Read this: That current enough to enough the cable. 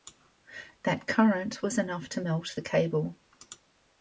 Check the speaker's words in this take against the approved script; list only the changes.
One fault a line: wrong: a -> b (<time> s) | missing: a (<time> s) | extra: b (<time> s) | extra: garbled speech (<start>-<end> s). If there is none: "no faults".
extra: was (1.6 s)
wrong: enough -> melt (2.2 s)